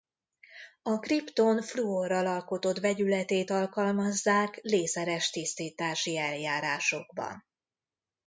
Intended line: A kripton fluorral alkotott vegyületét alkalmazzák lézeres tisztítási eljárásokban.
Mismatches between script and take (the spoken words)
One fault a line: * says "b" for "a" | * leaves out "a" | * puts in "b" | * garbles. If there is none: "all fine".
all fine